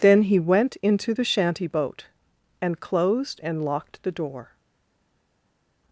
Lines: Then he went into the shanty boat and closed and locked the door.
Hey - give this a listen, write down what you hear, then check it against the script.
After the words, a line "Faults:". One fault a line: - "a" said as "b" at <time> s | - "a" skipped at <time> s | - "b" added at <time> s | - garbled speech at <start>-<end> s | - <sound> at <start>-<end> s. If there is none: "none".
Then he went into the shanty boat and closed and locked the door.
Faults:
none